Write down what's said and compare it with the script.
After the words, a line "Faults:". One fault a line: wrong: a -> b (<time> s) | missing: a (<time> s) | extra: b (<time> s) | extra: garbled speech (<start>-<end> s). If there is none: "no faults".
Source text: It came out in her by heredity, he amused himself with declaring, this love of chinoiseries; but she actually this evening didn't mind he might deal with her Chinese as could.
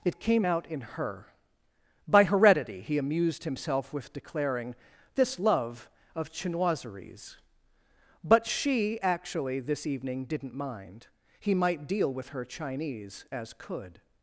It came out in her by heredity, he amused himself with declaring, this love of chinoiseries; but she actually this evening didn't mind he might deal with her Chinese as could.
Faults:
no faults